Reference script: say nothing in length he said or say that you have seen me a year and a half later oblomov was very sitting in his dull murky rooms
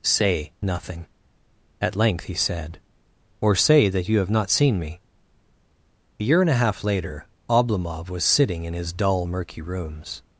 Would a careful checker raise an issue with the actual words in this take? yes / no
yes